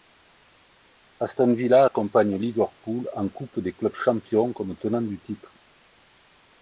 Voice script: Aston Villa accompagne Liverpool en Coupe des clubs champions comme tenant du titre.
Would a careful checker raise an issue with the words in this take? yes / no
no